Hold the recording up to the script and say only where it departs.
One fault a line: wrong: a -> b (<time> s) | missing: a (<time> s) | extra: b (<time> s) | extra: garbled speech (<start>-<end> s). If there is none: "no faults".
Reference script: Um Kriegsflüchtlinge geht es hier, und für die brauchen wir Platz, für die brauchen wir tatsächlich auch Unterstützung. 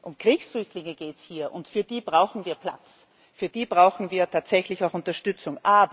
no faults